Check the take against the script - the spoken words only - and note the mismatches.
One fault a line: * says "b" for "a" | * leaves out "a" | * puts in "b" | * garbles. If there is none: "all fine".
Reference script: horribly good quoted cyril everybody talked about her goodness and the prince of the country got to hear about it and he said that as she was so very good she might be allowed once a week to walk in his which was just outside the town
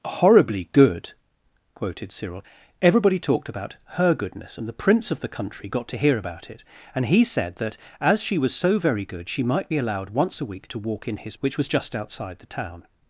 all fine